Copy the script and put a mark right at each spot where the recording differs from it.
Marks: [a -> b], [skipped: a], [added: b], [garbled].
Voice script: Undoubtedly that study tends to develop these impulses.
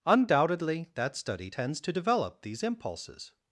Undoubtedly that study tends to develop these impulses.